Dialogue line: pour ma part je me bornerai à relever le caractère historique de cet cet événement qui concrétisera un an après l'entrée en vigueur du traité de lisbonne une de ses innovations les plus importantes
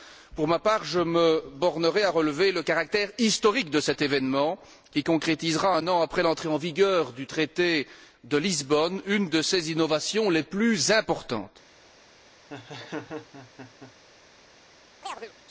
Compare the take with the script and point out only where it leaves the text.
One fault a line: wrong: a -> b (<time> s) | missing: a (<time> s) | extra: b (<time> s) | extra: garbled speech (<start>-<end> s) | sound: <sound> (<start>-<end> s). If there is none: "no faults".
missing: cet (4.0 s)
sound: laugh (12.5-13.9 s)
sound: chirp (15.0-15.3 s)